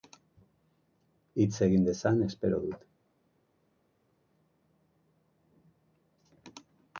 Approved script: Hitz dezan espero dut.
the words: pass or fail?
fail